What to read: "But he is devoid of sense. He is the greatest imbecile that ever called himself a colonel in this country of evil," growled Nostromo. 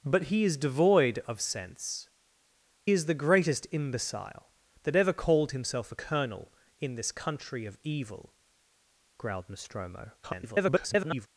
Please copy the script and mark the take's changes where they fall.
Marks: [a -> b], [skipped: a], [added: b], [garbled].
"But he is devoid of sense. [skipped: He] is the greatest imbecile that ever called himself a colonel in this country of evil," growled Nostromo. [garbled]